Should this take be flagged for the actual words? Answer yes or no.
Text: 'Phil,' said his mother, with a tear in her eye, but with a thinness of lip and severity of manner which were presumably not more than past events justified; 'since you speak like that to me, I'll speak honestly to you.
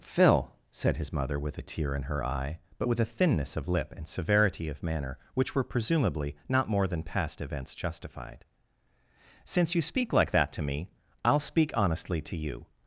no